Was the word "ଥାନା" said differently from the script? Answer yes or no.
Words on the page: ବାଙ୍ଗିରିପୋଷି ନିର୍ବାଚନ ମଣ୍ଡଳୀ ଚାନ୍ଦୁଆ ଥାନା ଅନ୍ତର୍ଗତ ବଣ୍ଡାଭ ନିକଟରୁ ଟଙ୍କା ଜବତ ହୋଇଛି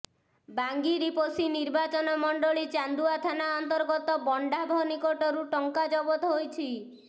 no